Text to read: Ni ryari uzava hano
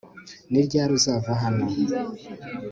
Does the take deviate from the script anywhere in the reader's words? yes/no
no